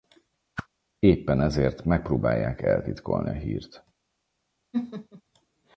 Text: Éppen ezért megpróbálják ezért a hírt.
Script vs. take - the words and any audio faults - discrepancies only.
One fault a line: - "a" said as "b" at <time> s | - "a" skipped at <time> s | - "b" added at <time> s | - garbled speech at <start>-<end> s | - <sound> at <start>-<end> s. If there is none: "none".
- whoosh at 0.6-0.7 s
- "ezért" said as "eltitkolni" at 2.6 s
- laugh at 4.7-5.2 s